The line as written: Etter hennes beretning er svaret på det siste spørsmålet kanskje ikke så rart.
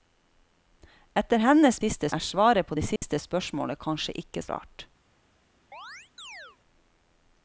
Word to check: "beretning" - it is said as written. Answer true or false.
false